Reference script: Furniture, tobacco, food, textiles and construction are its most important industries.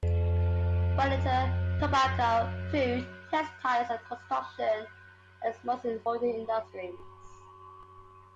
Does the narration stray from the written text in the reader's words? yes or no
no